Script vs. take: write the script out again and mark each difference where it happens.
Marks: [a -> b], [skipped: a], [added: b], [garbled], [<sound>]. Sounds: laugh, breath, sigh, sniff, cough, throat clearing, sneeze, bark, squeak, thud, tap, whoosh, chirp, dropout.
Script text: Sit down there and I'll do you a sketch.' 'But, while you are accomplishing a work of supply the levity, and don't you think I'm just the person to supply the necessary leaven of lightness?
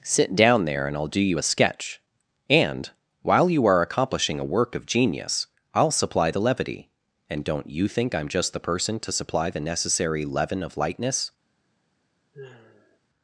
Sit down there and I'll do you a sketch.' ['But, -> And] while you are accomplishing a work of [added: genius I'll] supply the levity, and don't you think I'm just the person to supply the necessary leaven of lightness? [sigh]